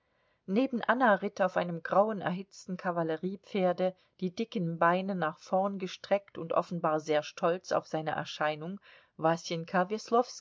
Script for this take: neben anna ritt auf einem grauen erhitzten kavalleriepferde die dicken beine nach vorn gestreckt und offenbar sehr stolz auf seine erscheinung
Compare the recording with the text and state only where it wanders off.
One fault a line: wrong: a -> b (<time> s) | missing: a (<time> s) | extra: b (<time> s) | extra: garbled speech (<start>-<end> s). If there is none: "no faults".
no faults